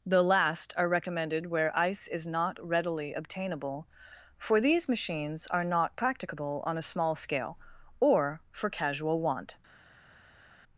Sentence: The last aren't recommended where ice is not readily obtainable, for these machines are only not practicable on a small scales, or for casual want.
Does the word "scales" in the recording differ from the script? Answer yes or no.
yes